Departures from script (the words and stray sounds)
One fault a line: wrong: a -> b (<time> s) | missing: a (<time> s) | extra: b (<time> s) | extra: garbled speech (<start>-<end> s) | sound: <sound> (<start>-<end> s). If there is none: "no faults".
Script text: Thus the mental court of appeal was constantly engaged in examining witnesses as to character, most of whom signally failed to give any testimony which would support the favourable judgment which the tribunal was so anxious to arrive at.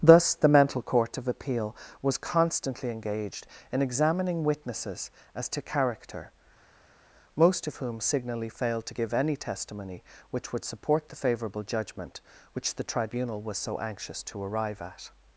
no faults